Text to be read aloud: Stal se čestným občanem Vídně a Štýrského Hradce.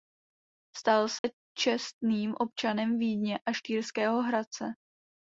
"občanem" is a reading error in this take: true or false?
false